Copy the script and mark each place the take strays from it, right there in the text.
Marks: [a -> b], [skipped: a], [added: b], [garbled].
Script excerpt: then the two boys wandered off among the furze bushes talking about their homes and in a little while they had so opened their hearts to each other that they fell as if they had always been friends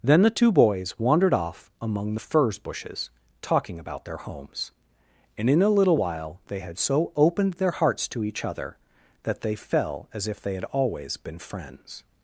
then the two boys wandered off among the furze bushes talking about their homes and in a little while they had so opened their hearts to each other that they fell as if they had always been friends